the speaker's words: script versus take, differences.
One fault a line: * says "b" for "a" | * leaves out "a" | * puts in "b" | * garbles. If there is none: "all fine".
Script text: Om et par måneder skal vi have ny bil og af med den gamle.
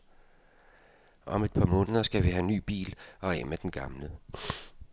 all fine